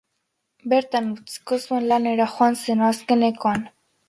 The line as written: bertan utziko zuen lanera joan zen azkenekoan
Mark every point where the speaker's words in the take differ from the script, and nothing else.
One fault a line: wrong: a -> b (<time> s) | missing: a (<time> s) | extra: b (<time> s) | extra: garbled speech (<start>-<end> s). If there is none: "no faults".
no faults